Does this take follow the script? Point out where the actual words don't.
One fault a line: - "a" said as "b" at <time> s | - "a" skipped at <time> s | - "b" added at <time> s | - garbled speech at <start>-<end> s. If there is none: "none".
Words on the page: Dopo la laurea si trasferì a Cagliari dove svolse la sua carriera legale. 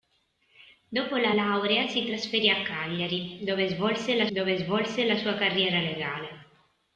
- "dove svolse la" added at 4.3 s